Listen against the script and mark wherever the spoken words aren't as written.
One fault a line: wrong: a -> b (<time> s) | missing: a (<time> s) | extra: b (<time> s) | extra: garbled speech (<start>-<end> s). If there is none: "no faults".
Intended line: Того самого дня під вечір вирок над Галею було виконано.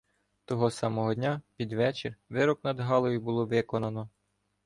no faults